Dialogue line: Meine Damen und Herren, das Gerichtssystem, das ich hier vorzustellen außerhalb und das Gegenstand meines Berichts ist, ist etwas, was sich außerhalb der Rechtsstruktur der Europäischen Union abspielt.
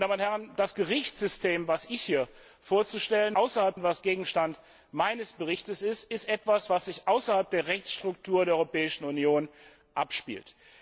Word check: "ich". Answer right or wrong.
right